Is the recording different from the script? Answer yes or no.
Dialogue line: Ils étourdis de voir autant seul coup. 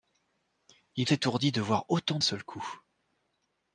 no